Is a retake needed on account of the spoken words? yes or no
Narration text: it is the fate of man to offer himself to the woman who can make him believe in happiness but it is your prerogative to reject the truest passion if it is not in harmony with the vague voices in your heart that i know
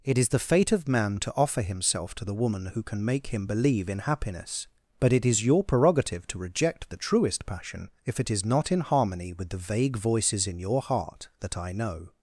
no